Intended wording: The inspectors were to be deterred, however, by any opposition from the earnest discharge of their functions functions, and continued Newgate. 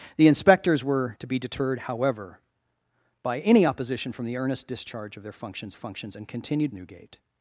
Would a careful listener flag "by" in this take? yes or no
no